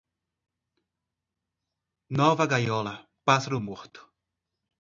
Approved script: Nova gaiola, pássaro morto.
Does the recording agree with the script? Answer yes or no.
yes